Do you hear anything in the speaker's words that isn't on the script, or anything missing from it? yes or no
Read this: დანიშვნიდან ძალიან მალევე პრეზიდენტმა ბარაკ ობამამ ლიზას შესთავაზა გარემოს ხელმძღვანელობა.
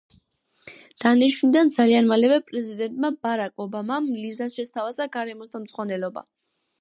no